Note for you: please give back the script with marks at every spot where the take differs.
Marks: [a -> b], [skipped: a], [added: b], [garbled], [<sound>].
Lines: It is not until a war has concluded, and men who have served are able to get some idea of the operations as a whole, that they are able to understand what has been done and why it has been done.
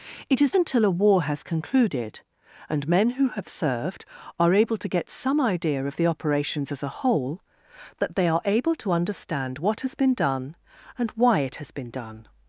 It is [skipped: not] until a war has concluded, and men who have served are able to get some idea of the operations as a whole, that they are able to understand what has been done and why it has been done.